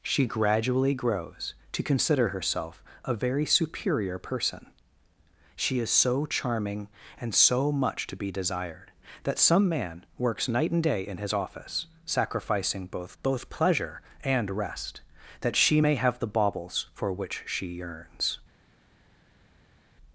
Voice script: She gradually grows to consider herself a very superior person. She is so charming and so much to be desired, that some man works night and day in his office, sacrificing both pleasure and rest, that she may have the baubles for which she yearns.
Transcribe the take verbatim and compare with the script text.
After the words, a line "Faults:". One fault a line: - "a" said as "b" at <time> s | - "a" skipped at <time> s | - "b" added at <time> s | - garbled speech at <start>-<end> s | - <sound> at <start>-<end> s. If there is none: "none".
She gradually grows to consider herself a very superior person. She is so charming and so much to be desired, that some man works night and day in his office, sacrificing both both pleasure and rest, that she may have the baubles for which she yearns.
Faults:
- "both" added at 13.2 s